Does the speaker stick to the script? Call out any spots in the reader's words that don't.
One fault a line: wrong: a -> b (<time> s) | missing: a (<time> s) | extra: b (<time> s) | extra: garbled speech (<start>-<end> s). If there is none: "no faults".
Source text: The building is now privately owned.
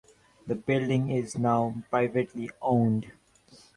no faults